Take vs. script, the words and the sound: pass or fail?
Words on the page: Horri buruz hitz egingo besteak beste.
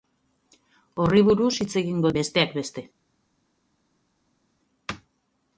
pass